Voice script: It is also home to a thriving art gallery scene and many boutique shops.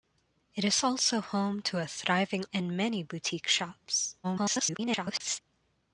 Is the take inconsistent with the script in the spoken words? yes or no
yes